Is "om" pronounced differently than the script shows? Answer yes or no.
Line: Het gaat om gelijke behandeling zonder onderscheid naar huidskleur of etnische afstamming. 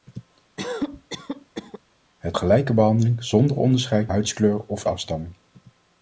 yes